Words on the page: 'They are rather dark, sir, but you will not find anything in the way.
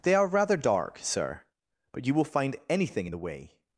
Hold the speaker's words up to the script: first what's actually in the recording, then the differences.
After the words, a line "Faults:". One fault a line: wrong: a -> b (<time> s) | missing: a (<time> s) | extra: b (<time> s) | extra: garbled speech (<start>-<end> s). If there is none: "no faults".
'They are rather dark, sir, but you will find anything in the way.
Faults:
missing: not (2.2 s)